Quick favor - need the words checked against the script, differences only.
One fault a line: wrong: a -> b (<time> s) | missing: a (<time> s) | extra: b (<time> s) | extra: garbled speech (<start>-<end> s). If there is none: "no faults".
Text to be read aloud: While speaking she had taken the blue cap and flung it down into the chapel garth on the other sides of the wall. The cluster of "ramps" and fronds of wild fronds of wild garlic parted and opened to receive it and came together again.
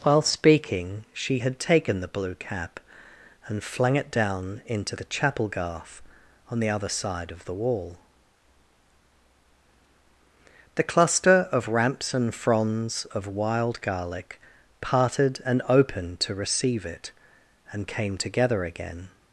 wrong: sides -> side (6.9 s)
missing: fronds of wild (13.8 s)